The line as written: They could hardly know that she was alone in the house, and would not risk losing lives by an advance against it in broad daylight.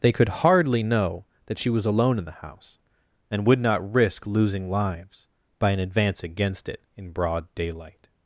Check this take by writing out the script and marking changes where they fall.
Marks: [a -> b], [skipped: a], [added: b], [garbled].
They could hardly know that she was alone in the house, and would not risk losing lives by an advance against it in broad daylight.